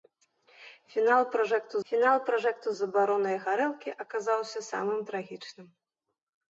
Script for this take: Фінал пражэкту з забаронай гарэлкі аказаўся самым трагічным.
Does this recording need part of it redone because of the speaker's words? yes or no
yes